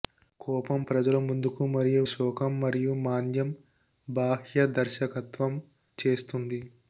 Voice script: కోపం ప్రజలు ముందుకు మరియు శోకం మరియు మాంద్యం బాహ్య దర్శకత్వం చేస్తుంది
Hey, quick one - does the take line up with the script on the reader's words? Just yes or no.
yes